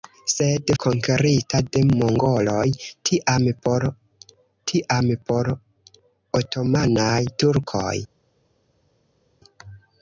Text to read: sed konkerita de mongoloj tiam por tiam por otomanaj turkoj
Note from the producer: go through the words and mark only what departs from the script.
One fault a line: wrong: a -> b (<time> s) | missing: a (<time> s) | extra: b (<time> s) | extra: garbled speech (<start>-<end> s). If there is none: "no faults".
no faults